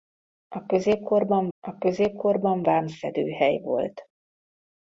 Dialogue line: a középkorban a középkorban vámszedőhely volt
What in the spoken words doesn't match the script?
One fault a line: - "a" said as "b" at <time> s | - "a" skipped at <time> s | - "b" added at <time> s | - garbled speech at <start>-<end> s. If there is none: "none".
none